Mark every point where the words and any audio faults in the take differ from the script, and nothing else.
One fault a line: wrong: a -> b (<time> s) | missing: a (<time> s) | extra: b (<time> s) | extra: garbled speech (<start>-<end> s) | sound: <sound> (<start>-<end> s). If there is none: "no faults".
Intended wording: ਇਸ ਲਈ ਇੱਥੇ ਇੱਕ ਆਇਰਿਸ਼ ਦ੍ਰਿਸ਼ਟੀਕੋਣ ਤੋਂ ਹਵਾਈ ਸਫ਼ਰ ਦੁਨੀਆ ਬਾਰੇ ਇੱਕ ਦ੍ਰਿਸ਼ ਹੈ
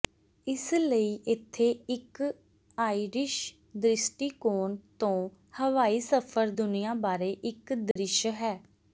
sound: dropout (7.9-8.0 s)